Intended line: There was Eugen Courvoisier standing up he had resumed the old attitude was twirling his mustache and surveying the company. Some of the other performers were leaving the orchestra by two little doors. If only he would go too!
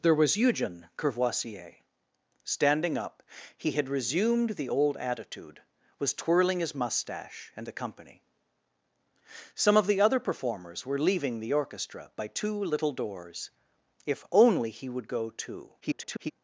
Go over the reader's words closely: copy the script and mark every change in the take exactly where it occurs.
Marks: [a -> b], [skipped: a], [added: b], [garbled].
There was Eugen Courvoisier standing up he had resumed the old attitude was twirling his mustache and [skipped: surveying] the company. Some of the other performers were leaving the orchestra by two little doors. If only he would go too! [garbled]